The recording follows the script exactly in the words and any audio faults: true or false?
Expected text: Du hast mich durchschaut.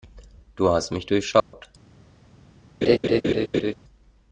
false